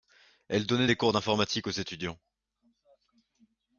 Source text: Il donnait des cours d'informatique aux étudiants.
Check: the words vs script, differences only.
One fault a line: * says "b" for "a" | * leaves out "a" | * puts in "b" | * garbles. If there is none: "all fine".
* says "Elle" for "Il"